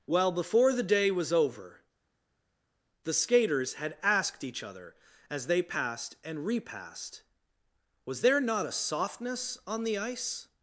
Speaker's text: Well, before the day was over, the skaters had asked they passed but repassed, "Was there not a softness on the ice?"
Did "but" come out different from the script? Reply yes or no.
yes